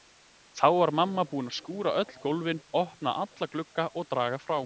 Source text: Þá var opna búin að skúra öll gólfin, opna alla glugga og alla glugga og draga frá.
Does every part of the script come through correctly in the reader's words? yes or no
no